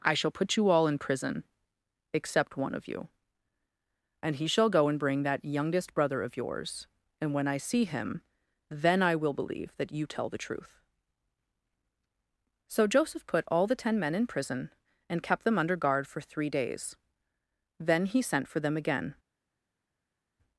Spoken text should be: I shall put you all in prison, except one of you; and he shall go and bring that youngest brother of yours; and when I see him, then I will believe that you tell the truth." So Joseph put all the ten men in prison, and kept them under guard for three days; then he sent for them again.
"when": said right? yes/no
yes